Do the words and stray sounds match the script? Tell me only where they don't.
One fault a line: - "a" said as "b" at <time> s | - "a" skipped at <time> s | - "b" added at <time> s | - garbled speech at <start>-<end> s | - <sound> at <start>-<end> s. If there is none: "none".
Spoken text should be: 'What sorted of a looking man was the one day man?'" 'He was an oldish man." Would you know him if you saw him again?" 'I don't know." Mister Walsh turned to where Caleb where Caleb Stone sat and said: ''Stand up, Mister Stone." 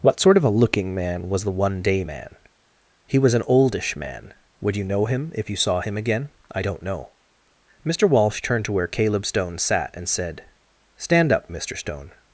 - "sorted" said as "sort" at 0.2 s
- "where Caleb" skipped at 9.2 s